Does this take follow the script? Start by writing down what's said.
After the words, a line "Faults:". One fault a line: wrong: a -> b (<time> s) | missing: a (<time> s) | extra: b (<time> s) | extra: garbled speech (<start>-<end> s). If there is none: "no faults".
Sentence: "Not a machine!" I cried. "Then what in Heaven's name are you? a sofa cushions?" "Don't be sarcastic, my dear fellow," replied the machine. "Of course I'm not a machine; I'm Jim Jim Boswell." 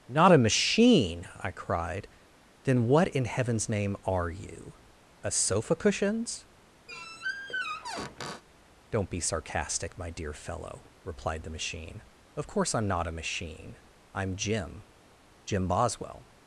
"Not a machine!" I cried. "Then what in Heaven's name are you? a sofa cushions?" "Don't be sarcastic, my dear fellow," replied the machine. "Of course I'm not a machine; I'm Jim Jim Boswell."
Faults:
no faults